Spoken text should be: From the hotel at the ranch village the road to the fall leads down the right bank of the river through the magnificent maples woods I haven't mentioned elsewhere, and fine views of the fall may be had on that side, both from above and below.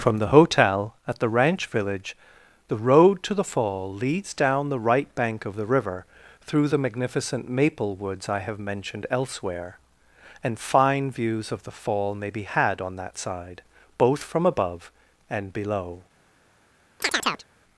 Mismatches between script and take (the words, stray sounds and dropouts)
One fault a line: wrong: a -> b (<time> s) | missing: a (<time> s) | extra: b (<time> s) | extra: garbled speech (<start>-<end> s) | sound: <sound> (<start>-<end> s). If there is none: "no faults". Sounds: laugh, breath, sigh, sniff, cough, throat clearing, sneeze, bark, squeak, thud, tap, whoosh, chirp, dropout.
wrong: maples -> maple (7.5 s)
wrong: haven't -> have (8.4 s)
sound: chirp (17.0-17.5 s)